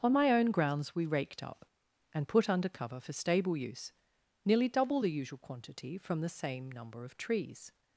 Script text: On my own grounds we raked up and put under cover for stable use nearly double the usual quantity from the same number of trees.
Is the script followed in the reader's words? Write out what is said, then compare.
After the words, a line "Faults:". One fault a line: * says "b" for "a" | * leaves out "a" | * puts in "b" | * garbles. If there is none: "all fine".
On my own grounds we raked up and put under cover for stable use nearly double the usual quantity from the same number of trees.
Faults:
all fine